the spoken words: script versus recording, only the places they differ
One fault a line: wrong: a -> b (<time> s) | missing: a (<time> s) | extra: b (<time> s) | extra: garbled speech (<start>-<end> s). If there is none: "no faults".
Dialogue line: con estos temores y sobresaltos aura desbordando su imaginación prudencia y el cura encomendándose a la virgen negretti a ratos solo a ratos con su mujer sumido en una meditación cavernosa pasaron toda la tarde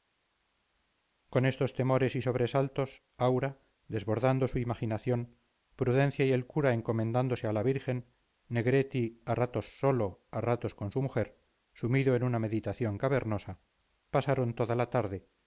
no faults